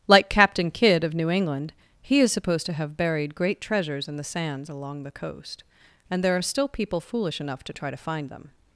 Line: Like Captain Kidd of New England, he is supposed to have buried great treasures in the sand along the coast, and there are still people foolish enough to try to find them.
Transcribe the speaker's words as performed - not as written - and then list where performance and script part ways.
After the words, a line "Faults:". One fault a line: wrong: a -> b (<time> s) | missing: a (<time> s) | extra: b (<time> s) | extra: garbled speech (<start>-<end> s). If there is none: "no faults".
Like Captain Kidd of New England, he is supposed to have buried great treasures in the sands along the coast, and there are still people foolish enough to try to find them.
Faults:
wrong: sand -> sands (4.2 s)